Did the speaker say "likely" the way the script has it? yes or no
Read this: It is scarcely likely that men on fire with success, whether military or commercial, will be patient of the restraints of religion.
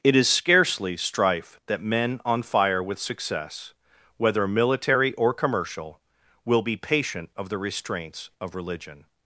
no